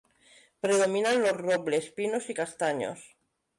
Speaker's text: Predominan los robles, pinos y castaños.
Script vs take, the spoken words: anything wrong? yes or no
no